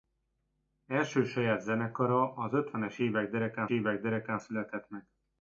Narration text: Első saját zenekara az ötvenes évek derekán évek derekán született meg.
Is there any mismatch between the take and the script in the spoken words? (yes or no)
no